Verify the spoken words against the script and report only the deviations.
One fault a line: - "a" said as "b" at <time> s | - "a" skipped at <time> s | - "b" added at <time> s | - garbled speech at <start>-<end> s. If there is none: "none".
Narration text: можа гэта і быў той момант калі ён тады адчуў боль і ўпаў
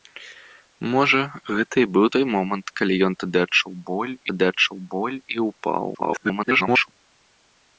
- "тады адчуў боль" added at 4.3 s
- garbled speech at 5.9-6.9 s